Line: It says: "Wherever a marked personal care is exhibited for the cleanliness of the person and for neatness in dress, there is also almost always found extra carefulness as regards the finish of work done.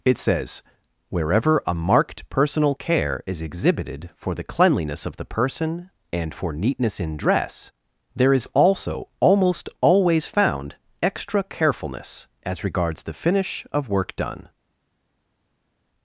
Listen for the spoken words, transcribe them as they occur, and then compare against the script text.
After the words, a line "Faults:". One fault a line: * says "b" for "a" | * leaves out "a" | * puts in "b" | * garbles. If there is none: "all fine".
It says: "Wherever a marked personal care is exhibited for the cleanliness of the person and for neatness in dress, there is also almost always found extra carefulness as regards the finish of work done.
Faults:
all fine